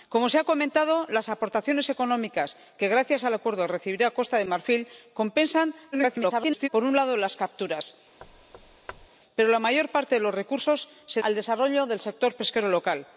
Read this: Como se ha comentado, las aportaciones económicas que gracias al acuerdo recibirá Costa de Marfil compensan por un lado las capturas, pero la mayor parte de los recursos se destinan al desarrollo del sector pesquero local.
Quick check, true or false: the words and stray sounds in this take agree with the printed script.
false